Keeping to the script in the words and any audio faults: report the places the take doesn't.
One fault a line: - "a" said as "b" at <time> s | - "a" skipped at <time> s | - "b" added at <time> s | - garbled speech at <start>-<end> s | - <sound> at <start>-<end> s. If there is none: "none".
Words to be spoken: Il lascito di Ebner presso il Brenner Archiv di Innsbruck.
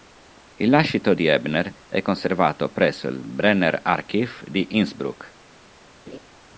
- "è conservato" added at 1.9 s
- laugh at 6.1-6.2 s